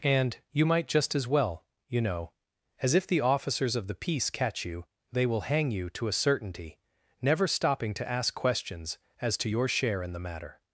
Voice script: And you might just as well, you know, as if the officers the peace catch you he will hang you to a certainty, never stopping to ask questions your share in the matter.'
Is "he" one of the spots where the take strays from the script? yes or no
yes